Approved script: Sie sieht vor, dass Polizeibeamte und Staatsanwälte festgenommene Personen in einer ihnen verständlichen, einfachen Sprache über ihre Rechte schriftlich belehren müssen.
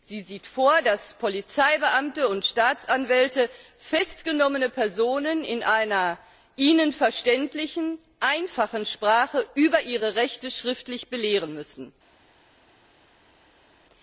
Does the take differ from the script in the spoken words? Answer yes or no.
no